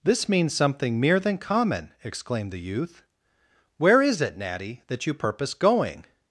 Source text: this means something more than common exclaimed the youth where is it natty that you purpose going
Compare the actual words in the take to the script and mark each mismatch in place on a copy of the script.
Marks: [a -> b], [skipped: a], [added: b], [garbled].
this means something [more -> mere] than common exclaimed the youth where is it natty that you purpose going